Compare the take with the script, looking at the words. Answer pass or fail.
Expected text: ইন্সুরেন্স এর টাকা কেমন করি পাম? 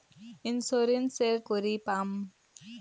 fail